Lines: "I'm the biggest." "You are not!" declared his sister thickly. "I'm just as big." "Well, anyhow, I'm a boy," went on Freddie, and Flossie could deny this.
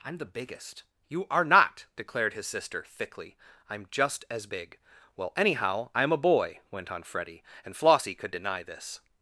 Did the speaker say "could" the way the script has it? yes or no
yes